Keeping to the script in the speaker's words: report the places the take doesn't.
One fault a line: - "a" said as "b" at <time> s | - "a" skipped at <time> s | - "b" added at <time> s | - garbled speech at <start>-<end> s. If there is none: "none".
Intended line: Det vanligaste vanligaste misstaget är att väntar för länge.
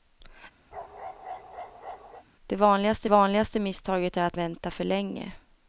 none